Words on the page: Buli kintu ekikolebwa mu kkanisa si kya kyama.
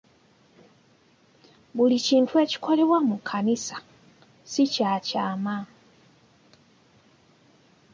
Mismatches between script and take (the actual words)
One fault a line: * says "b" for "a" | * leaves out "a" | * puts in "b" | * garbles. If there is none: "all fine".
all fine